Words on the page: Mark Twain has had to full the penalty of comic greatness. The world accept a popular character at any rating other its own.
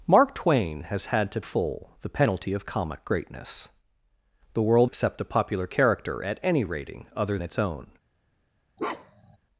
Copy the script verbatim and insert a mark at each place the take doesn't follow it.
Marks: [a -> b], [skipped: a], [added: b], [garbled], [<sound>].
Mark Twain has had to full the penalty of comic greatness. The world accept a popular character at any rating other its own. [bark]